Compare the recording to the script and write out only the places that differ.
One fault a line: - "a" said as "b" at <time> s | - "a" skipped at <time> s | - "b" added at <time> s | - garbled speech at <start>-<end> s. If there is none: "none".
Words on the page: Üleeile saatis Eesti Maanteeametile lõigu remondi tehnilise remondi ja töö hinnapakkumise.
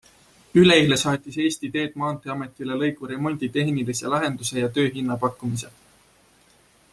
- "Teed" added at 1.8 s
- "remondi" said as "lahenduse" at 4.2 s